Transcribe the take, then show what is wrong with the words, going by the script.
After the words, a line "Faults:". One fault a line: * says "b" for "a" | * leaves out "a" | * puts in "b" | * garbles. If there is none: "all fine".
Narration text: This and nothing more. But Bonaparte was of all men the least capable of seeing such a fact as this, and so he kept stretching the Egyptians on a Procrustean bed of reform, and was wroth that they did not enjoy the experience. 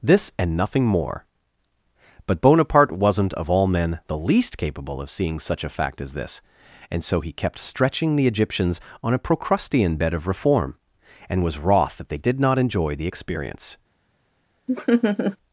This and nothing more. But Bonaparte wasn't of all men the least capable of seeing such a fact as this, and so he kept stretching the Egyptians on a Procrustean bed of reform, and was wroth that they did not enjoy the experience.
Faults:
* says "wasn't" for "was"